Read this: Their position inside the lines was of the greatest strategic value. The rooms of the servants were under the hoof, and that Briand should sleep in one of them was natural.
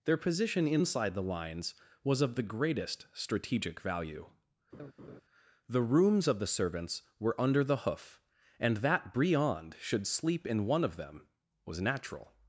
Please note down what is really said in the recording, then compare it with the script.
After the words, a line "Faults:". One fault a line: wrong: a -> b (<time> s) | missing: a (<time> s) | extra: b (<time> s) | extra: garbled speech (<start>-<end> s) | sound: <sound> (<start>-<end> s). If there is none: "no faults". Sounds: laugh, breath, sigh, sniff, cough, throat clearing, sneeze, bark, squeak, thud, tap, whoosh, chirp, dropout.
Their position inside the lines was of the greatest strategic value. The rooms of the servants were under the hoof, and that Briand should sleep in one of them was natural.
Faults:
sound: laugh (4.7-5.2 s)